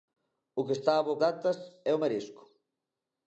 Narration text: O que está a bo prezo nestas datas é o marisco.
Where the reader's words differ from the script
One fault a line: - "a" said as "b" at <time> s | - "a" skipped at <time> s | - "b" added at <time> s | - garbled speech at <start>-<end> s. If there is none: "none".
- "prezo nestas" skipped at 1.1 s